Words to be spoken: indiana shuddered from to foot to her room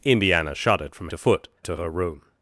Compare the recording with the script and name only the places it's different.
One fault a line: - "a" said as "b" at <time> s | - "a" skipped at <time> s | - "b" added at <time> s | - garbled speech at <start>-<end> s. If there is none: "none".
none